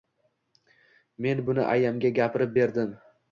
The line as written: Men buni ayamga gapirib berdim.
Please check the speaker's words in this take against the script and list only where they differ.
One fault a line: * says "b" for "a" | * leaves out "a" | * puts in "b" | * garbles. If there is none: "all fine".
all fine